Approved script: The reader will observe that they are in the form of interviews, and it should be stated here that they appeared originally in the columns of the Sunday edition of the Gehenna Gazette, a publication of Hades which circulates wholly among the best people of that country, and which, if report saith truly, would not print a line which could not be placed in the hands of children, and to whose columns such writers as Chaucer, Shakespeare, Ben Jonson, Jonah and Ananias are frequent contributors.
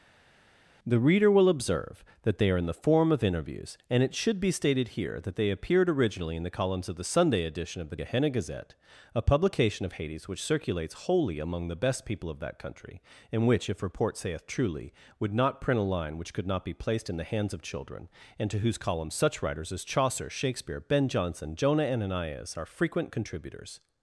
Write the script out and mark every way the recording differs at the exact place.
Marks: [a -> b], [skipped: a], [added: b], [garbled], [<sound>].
The reader will observe that they are in the form of interviews, and it should be stated here that they appeared originally in the columns of the Sunday edition of the Gehenna Gazette, a publication of Hades which circulates wholly among the best people of that country, and which, if report saith truly, would not print a line which could not be placed in the hands of children, and to whose columns such writers as Chaucer, Shakespeare, Ben Jonson, Jonah [skipped: and] Ananias are frequent contributors.